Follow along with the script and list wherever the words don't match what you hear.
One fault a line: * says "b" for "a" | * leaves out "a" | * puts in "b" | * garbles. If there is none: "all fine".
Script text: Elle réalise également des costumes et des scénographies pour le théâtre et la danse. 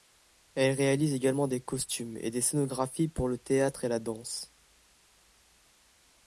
all fine